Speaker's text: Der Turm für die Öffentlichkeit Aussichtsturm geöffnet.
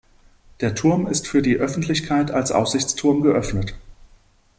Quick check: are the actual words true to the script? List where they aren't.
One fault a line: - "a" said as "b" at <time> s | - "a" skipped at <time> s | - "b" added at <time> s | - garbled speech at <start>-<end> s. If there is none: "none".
- "ist" added at 1.1 s
- "als" added at 2.3 s